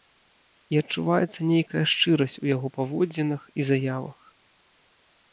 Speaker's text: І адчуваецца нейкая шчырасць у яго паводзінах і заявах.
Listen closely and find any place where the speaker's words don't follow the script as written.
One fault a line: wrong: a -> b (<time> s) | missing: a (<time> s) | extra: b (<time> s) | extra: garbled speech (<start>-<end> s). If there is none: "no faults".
no faults